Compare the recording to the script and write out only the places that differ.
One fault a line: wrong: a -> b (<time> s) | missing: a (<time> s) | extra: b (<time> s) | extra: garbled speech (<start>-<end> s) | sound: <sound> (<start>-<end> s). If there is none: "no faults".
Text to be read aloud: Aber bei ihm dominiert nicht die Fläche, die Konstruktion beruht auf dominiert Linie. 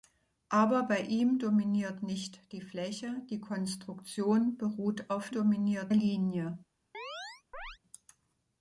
sound: chirp (6.9-7.8 s)